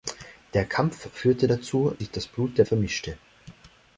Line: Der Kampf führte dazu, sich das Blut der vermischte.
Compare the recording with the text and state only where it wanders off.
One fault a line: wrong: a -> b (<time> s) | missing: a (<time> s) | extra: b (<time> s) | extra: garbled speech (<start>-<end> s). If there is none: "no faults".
no faults